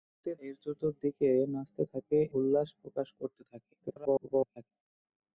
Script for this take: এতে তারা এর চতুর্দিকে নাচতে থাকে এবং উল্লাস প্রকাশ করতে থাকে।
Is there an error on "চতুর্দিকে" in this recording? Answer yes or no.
no